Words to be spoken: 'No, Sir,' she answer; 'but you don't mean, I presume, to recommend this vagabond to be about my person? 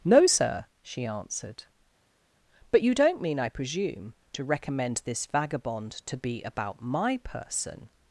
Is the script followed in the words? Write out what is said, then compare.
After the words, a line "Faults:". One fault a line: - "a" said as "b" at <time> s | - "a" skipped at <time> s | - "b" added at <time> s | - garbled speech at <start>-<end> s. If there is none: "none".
'No, Sir,' she answered; 'but you don't mean, I presume, to recommend this vagabond to be about my person?
Faults:
- "answer" said as "answered" at 1.0 s